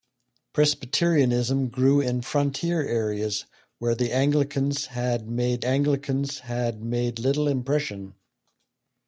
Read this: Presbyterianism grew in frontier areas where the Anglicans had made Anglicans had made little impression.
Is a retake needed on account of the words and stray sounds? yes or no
no